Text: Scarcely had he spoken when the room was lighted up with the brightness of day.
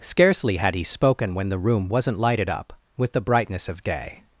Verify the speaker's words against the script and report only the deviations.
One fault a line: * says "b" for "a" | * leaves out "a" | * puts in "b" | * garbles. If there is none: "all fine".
* says "wasn't" for "was"